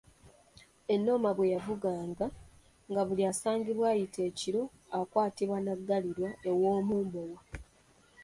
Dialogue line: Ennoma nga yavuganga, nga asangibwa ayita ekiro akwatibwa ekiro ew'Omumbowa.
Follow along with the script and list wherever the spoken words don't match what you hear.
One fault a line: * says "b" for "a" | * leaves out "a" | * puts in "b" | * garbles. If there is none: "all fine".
* says "bwe" for "nga"
* puts in "buli"
* says "n'aggalirwa" for "ekiro"